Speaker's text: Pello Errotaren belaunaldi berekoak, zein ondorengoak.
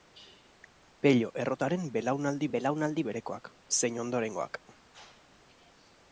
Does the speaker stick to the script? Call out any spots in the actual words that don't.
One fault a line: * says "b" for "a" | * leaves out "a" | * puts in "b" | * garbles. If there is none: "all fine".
* puts in "belaunaldi"